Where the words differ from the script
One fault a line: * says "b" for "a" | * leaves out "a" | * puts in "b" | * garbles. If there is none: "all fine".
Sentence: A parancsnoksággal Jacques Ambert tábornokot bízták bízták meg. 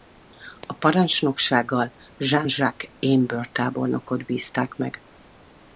* puts in "Jean"
* leaves out "bízták"